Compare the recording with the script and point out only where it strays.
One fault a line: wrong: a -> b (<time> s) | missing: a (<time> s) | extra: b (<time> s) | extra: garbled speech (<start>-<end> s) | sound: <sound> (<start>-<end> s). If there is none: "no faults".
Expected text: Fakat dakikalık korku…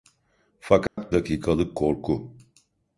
sound: dropout (0.9-1.0 s)